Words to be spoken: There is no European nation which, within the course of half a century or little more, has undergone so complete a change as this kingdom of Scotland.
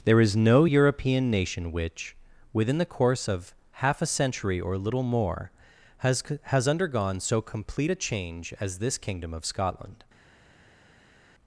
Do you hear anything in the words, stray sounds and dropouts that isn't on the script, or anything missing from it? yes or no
yes